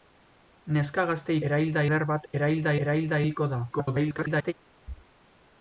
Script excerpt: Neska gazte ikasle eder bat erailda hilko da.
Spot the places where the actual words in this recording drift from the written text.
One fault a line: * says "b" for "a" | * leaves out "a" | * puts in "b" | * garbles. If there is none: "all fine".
* says "erailda" for "ikasle"
* puts in "erailda"
* garbles